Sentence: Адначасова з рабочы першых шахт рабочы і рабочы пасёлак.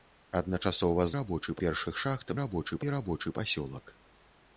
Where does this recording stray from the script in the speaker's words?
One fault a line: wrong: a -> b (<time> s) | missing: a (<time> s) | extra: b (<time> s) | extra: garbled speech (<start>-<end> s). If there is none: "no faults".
no faults